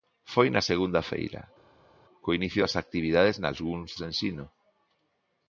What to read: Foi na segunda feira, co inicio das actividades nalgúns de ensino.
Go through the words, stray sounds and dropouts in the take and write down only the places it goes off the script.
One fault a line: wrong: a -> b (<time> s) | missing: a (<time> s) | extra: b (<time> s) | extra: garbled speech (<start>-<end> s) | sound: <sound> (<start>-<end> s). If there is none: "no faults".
no faults